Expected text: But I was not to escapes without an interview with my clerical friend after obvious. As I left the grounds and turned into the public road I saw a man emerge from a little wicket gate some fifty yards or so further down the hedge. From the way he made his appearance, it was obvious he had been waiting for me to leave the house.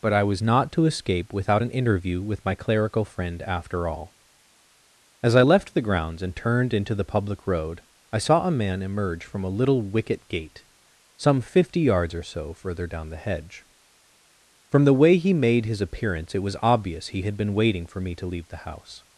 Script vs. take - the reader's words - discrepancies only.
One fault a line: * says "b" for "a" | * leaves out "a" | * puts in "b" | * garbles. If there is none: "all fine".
* says "escape" for "escapes"
* says "all" for "obvious"